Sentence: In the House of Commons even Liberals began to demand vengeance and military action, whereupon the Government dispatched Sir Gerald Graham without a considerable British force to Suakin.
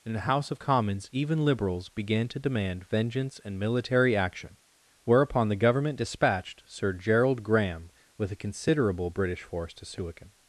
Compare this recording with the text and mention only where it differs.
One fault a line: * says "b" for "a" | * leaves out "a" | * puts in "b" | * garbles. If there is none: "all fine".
* says "with" for "without"